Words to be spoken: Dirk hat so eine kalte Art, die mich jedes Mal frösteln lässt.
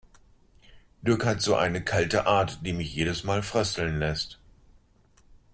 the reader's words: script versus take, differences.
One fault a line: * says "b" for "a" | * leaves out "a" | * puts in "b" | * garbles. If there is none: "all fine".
all fine